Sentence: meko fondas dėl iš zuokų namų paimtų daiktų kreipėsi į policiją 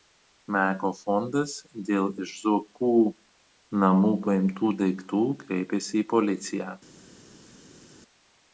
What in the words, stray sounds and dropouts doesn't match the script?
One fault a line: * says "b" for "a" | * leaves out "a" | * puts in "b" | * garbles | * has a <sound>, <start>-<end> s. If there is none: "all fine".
all fine